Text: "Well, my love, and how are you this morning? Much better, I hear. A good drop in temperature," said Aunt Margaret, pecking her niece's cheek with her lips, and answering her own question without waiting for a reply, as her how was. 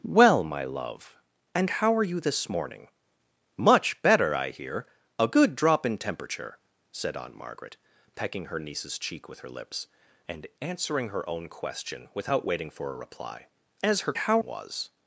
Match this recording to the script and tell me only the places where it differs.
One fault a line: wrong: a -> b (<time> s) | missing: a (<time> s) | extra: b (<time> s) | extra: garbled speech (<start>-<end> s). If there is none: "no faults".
no faults